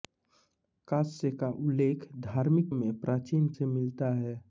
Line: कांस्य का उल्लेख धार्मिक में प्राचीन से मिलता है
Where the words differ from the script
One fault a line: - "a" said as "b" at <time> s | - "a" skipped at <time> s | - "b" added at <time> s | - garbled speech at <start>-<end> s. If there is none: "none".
none